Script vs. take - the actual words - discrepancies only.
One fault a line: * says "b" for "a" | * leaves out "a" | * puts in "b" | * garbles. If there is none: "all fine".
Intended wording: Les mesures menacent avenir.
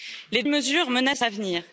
all fine